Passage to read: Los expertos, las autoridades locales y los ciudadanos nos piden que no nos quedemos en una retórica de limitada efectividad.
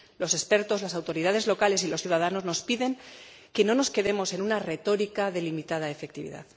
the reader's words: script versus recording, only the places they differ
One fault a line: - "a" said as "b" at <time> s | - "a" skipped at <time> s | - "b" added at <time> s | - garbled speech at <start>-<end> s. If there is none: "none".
none